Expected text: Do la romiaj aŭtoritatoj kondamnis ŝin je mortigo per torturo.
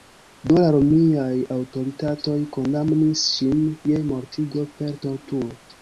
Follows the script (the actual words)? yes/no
yes